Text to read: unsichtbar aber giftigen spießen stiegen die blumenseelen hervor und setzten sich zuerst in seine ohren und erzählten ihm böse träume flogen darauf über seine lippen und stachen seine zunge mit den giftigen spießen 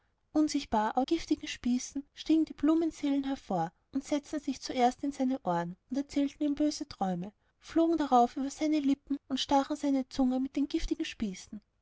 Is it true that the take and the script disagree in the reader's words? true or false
false